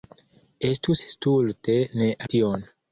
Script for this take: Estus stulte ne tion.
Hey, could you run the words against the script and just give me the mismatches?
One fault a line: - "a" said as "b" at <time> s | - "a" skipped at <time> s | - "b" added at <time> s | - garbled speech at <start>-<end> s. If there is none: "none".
none